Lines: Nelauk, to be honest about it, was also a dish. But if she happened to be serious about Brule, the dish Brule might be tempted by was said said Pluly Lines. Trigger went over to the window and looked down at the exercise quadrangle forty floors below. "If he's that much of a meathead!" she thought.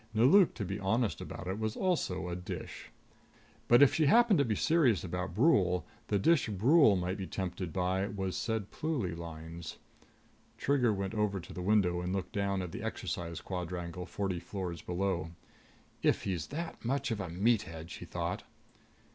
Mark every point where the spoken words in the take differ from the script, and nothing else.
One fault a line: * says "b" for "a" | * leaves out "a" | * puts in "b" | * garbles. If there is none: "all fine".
* leaves out "said"